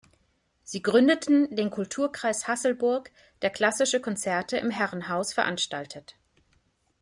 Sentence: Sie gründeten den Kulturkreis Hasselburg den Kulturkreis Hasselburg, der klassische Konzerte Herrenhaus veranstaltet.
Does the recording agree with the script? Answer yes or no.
no